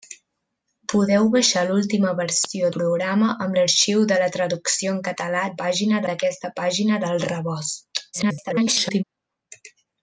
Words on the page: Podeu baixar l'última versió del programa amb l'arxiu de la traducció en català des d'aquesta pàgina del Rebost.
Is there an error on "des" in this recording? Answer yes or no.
yes